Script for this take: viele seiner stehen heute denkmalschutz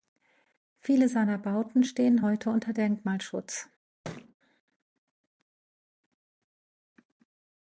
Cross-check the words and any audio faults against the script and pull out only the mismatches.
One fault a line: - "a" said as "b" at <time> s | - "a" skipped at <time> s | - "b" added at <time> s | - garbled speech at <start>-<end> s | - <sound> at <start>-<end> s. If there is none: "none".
- "bauten" added at 1.4 s
- "unter" added at 2.5 s
- thud at 4.0-4.3 s